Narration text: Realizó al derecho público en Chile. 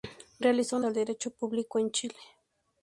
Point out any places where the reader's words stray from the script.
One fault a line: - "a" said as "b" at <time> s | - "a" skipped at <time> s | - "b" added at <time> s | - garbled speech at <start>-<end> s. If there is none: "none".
none